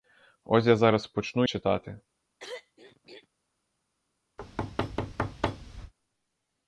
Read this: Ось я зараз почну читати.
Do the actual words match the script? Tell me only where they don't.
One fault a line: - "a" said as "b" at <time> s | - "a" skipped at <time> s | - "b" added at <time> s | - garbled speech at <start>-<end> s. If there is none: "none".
none